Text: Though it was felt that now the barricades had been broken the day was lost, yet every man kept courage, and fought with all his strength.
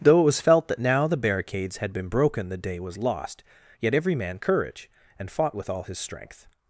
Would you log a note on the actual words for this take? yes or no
yes